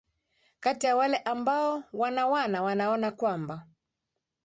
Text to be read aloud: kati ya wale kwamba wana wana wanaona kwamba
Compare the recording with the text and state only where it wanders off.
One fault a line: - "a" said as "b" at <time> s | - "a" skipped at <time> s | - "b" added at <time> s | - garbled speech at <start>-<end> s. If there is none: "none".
- "kwamba" said as "ambao" at 1.2 s